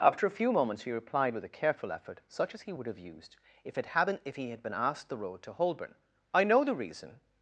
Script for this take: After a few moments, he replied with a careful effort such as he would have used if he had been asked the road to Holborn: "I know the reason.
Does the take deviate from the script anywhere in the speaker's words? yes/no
yes